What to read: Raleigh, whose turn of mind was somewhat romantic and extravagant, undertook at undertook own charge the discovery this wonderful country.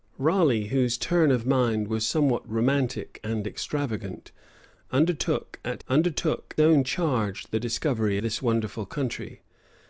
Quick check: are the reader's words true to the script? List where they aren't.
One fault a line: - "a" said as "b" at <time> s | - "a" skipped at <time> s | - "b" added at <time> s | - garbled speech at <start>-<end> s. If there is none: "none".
none